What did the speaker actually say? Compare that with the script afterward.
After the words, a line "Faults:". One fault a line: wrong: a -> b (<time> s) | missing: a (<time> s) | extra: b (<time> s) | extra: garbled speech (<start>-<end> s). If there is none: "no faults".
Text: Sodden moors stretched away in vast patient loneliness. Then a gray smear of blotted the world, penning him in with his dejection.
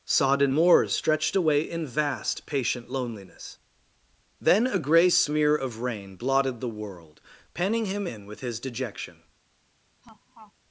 Sodden moors stretched away in vast patient loneliness. Then a gray smear of rain blotted the world, penning him in with his dejection.
Faults:
extra: rain (5.8 s)